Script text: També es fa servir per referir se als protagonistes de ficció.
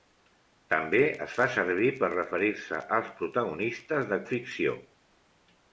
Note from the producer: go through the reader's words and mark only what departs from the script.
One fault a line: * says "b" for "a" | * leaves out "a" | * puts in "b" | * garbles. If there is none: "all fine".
all fine